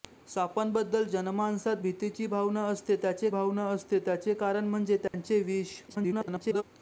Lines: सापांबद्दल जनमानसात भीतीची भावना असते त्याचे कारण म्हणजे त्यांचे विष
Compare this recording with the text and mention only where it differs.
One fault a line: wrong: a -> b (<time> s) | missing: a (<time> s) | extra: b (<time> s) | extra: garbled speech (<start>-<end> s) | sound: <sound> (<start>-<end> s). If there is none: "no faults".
extra: भावना असते त्याचे (3.3 s)
sound: dropout (5.1-5.1 s)
extra: garbled speech (5.9-6.6 s)